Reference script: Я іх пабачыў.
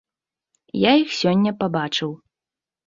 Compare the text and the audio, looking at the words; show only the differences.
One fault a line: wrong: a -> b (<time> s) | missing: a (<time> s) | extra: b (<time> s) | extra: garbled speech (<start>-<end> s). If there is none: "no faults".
extra: сёння (1.2 s)